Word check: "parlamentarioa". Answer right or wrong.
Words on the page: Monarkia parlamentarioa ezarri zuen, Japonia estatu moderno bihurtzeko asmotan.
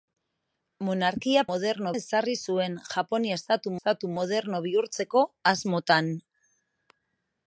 wrong